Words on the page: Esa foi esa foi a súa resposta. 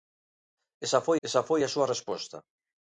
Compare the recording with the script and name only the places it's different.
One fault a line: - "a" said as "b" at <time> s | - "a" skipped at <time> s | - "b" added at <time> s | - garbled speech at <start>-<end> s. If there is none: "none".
none